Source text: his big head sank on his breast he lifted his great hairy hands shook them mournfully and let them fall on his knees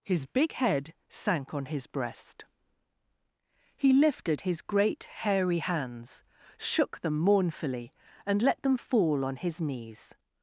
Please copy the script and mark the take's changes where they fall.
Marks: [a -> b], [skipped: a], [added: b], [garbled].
his big head sank on his breast he lifted his great hairy hands shook them mournfully and let them fall on his knees